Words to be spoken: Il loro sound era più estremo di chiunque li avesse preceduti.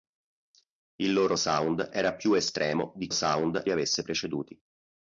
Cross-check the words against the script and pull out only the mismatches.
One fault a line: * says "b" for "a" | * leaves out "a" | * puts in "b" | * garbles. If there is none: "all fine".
* says "sound" for "chiunque"